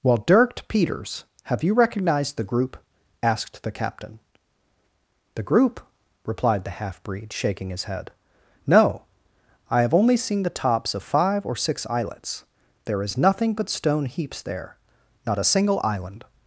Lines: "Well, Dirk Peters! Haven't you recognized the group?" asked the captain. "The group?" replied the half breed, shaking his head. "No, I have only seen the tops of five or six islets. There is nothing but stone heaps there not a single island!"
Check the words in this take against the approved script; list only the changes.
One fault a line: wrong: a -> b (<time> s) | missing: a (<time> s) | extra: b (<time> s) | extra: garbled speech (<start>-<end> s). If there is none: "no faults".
wrong: Haven't -> Have (1.4 s)